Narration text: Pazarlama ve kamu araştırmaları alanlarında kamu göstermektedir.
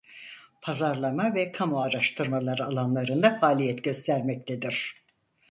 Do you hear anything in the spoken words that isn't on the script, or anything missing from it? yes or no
yes